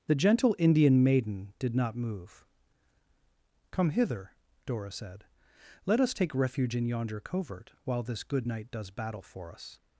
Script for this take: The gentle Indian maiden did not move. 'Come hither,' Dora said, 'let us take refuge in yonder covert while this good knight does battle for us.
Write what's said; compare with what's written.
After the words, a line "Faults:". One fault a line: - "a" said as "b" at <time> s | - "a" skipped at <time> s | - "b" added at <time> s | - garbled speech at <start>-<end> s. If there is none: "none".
The gentle Indian maiden did not move. 'Come hither,' Dora said, 'let us take refuge in yonder covert while this good knight does battle for us.
Faults:
none